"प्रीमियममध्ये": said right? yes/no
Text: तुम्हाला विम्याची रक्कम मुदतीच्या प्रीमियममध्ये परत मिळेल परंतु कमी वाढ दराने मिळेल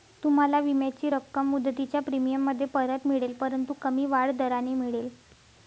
yes